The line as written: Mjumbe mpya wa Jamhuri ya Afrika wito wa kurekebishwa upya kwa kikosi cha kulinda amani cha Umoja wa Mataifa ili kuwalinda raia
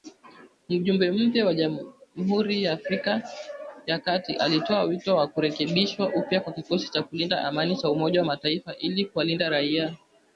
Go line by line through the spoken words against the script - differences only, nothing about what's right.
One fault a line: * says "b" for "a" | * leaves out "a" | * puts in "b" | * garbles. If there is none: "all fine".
* puts in "ya kati alitoa"